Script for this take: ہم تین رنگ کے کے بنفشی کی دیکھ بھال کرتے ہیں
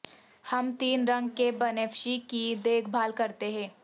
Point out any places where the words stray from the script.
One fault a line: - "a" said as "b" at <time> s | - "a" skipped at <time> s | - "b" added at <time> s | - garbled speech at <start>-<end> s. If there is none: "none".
- "کے" skipped at 1.5 s